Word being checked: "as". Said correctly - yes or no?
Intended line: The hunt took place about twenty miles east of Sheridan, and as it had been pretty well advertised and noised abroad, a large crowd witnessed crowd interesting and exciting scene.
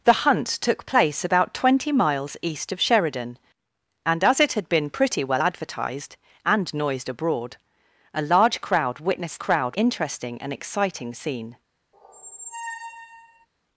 yes